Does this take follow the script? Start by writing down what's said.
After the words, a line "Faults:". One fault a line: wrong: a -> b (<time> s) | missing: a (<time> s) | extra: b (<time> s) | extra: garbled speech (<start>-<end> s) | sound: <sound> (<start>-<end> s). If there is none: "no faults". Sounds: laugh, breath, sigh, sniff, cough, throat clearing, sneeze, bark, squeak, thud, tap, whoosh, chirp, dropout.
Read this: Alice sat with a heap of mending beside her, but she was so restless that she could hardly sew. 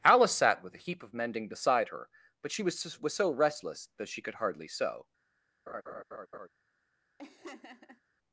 Alice sat with a heap of mending beside her, but she was was so restless that she could hardly sew.
Faults:
extra: was (3.0 s)
sound: laugh (5.7-6.5 s)
sound: laugh (7.2-8.0 s)